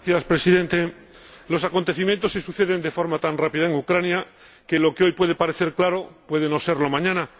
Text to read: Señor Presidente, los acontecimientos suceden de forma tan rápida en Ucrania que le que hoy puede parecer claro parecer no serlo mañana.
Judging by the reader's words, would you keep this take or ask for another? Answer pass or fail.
fail